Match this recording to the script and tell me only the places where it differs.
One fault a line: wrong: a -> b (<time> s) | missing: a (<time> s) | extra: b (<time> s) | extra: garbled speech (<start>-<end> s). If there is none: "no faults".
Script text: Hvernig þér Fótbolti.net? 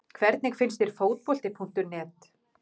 extra: finnst (0.6 s)